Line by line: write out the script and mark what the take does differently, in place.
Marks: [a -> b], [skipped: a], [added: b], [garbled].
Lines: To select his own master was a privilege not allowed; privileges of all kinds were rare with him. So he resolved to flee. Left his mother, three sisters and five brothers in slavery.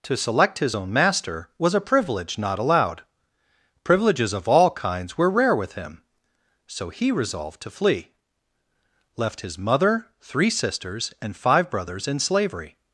To select his own master was a privilege not allowed; privileges of all kinds were rare with him. So he resolved to flee. Left his mother, three sisters and five brothers in slavery.